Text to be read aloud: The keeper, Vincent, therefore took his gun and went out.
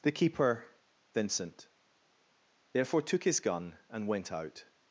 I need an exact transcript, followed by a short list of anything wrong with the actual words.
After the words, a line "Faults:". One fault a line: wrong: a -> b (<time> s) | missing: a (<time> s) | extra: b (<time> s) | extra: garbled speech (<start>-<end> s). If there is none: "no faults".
The keeper, Vincent, therefore took his gun and went out.
Faults:
no faults